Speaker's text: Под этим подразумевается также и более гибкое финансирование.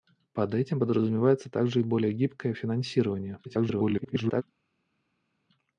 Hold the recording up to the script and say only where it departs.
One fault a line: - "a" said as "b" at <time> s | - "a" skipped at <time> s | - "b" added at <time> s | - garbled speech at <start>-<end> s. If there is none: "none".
- garbled speech at 3.4-4.4 s